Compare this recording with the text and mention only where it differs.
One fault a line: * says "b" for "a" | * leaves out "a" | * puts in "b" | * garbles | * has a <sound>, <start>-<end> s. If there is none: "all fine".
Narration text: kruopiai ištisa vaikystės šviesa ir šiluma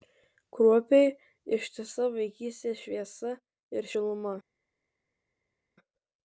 all fine